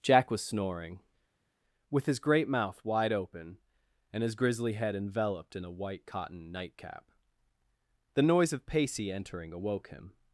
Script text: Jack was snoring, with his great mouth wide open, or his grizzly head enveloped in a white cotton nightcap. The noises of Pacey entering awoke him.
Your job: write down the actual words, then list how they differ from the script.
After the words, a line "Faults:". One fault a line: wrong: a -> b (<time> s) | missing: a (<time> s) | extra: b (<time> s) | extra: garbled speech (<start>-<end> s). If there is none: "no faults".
Jack was snoring, with his great mouth wide open, and his grizzly head enveloped in a white cotton nightcap. The noise of Pacey entering awoke him.
Faults:
wrong: or -> and (4.1 s)
wrong: noises -> noise (8.2 s)